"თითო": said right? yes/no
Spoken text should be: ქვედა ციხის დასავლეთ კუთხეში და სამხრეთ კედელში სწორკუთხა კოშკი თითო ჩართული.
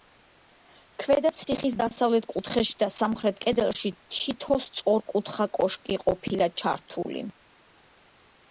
no